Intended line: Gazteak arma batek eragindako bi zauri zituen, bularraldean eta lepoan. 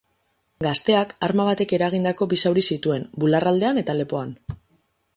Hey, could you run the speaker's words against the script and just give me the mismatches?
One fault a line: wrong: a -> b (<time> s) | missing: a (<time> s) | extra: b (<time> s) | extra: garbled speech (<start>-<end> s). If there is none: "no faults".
no faults